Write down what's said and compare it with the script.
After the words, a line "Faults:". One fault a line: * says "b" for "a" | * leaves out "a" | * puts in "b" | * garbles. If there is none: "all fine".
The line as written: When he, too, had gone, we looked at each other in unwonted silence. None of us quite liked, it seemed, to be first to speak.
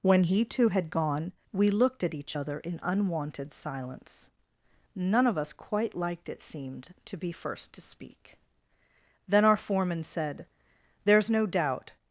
When he, too, had gone, we looked at each other in unwonted silence. None of us quite liked, it seemed, to be first to speak. Then our foreman said: "There's no doubt
Faults:
* puts in "Then our foreman said There's no doubt"